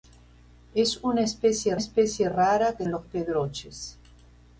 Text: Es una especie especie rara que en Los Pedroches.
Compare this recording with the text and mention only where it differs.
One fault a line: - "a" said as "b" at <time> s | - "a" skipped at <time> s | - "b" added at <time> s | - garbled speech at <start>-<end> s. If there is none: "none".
none